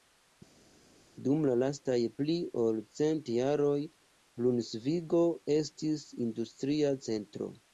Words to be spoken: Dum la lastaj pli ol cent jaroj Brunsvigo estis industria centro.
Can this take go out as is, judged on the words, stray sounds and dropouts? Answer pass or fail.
pass